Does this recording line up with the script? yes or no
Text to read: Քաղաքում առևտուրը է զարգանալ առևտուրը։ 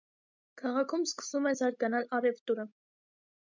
no